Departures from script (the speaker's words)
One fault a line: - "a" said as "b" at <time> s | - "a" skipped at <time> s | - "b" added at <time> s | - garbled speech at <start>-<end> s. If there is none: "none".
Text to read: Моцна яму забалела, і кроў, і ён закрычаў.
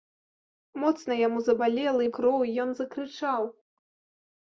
none